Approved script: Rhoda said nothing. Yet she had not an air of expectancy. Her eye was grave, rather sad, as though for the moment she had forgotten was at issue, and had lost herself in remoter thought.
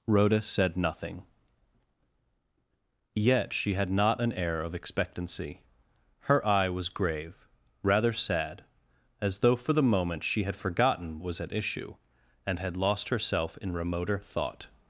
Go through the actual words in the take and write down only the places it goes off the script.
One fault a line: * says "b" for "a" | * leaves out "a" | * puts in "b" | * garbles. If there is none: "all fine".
all fine